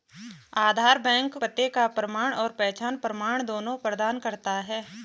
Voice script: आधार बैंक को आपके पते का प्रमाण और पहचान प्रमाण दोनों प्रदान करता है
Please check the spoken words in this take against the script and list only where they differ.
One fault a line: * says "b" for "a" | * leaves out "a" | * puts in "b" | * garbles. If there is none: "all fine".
* leaves out "को आपके"